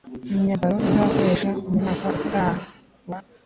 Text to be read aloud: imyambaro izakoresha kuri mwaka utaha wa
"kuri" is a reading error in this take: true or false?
true